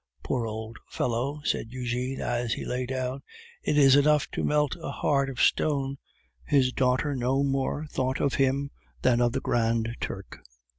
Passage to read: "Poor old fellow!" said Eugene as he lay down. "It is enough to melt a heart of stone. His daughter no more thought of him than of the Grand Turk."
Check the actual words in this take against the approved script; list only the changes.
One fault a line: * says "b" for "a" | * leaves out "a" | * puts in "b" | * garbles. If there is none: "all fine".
all fine